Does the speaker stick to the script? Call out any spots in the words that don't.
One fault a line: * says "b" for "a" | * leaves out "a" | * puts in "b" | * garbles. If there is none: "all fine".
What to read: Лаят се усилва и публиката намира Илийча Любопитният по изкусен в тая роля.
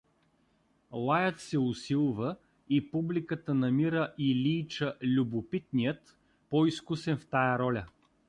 all fine